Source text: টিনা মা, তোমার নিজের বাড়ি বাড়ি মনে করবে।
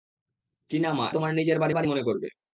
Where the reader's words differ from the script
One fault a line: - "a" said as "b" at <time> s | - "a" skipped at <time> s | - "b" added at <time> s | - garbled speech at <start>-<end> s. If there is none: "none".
none